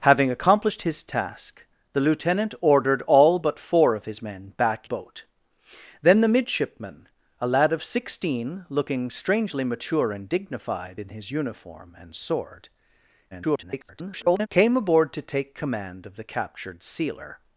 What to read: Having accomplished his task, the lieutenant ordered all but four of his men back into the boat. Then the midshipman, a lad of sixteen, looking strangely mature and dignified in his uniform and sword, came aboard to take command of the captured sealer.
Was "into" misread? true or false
true